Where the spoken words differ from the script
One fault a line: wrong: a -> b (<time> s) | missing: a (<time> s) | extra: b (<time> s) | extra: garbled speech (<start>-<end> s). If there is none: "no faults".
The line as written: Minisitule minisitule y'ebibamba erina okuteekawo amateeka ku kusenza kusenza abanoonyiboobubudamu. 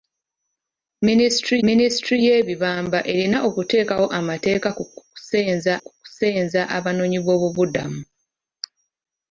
no faults